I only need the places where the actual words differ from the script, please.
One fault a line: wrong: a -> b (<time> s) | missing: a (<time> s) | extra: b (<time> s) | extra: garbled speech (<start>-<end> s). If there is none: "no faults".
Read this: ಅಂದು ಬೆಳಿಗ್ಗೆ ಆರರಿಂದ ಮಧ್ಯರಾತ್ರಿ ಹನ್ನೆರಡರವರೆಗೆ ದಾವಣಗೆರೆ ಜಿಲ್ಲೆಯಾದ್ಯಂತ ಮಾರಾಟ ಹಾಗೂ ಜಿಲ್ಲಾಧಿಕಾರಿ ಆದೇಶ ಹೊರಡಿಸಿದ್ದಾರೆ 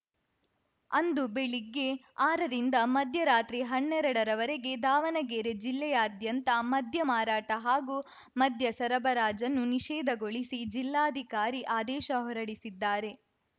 extra: ಮದ್ಯ (6.7 s)
extra: ಮದ್ಯ ಸರಬರಾಜನ್ನು ನಿಷೇಧಗೊಳಿಸಿ (8.4 s)